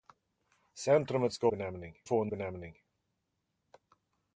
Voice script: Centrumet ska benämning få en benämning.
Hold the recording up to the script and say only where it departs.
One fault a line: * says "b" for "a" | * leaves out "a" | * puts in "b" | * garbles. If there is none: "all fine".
all fine